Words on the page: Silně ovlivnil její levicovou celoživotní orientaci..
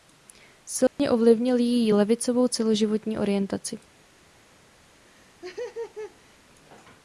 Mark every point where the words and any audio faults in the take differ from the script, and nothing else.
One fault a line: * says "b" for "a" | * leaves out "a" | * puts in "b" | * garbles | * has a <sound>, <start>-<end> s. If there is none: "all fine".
* has a dropout, 0.9-1.0 s
* has a laugh, 5.1-6.4 s